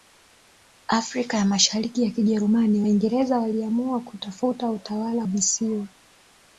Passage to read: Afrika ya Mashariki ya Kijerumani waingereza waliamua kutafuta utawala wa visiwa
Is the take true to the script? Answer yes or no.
no